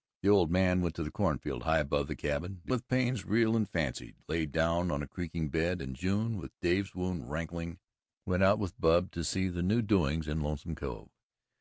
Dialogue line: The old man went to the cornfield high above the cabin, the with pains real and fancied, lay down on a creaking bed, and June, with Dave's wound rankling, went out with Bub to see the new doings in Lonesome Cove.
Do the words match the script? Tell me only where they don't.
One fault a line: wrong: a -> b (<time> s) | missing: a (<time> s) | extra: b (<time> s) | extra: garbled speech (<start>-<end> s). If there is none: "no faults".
no faults